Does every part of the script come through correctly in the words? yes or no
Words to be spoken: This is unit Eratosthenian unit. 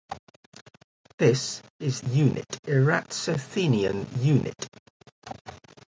yes